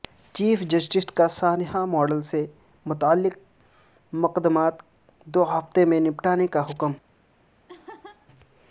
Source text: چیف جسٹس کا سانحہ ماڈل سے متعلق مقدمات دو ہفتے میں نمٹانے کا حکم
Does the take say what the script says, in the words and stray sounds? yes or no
no